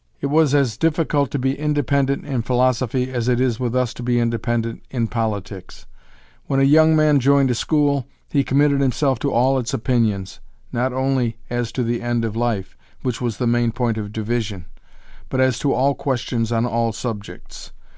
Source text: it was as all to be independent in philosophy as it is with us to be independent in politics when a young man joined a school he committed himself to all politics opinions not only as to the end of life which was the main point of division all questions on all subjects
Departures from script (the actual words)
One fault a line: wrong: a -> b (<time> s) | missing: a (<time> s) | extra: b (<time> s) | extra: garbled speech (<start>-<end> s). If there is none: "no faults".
wrong: all -> difficult (0.8 s)
wrong: politics -> its (9.6 s)
extra: but as to (15.3 s)